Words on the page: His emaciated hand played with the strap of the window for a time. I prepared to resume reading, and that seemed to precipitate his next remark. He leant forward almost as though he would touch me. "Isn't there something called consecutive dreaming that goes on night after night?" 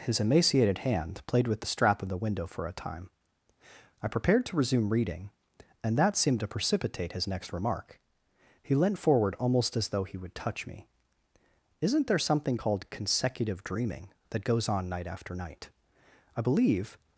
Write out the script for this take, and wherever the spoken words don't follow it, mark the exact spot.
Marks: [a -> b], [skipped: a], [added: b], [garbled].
His emaciated hand played with the strap of the window for a time. I prepared to resume reading, and that seemed to precipitate his next remark. He leant forward almost as though he would touch me. "Isn't there something called consecutive dreaming that goes on night after night?" [added: I believe]